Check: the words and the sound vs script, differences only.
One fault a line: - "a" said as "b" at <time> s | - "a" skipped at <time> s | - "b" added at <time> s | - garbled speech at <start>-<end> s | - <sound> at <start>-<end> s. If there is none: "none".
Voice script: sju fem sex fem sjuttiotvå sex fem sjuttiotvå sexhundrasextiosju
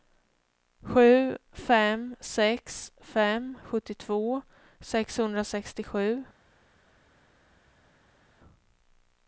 - "sex fem sjuttiotvå" skipped at 4.4 s